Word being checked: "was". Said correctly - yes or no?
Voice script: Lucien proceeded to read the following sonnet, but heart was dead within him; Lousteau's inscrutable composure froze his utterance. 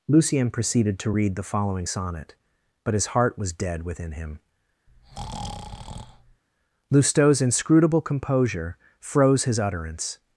yes